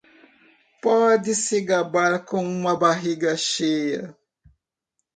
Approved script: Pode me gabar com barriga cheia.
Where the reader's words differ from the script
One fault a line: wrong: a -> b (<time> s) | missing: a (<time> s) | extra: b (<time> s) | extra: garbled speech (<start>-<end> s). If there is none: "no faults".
wrong: me -> se (1.4 s)
extra: uma (2.4 s)